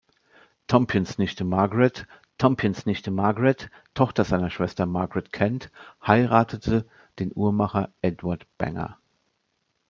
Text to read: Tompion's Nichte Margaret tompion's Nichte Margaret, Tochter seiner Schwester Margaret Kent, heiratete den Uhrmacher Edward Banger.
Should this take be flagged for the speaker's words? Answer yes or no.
no